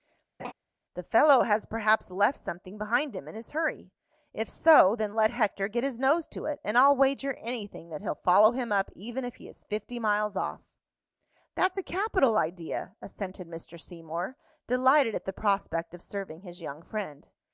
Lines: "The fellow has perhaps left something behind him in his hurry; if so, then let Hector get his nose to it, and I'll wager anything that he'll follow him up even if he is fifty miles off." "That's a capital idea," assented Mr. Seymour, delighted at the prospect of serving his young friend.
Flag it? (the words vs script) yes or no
no